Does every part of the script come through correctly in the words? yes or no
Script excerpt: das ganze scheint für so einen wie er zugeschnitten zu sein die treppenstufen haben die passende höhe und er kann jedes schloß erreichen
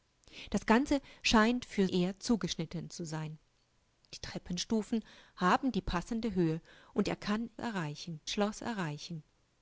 no